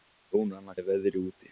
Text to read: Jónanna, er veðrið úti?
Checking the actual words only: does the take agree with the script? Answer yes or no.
yes